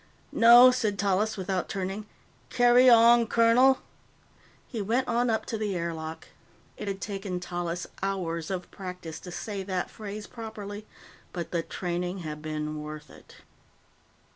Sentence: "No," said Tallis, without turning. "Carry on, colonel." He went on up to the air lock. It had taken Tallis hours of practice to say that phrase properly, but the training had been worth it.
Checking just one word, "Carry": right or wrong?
right